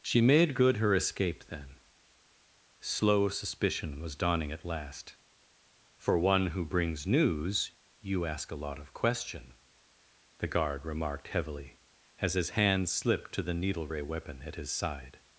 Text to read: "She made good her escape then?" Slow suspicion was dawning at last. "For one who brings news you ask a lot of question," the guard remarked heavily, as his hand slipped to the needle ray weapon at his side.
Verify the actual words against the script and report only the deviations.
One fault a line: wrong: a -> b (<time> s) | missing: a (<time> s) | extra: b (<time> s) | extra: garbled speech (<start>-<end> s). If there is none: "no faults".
no faults